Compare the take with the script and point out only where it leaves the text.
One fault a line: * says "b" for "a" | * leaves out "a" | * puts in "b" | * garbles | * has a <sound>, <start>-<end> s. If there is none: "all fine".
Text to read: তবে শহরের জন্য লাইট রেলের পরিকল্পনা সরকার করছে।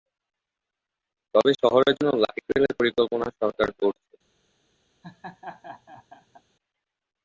* has a laugh, 5.0-6.4 s